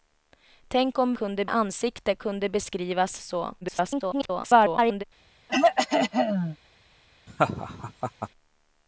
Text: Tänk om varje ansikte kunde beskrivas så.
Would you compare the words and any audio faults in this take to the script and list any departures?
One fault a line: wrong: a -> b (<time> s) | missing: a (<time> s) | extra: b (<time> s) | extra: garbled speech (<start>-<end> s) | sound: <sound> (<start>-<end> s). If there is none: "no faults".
wrong: varje -> kunde (1.1 s)
extra: garbled speech (3.6-5.0 s)
sound: throat clearing (5.5-6.6 s)
sound: laugh (7.3-8.3 s)